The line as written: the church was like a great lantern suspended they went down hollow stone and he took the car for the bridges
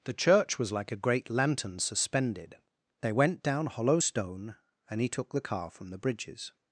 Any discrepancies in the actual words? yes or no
yes